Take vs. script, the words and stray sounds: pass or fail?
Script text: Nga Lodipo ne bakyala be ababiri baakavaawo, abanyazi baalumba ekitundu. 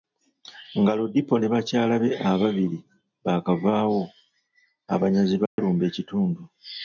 fail